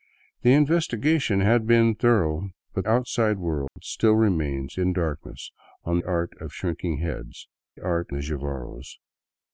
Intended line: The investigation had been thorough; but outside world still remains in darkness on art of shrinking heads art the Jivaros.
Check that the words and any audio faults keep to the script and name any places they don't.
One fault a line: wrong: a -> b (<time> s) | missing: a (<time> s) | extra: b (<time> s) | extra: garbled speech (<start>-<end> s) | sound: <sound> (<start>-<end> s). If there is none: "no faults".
sound: dropout (3.7-3.8 s)